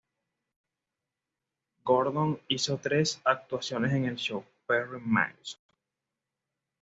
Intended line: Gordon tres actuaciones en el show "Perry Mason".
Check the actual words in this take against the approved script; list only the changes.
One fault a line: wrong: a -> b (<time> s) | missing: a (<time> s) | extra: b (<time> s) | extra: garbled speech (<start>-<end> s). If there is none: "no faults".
extra: hizo (2.5 s)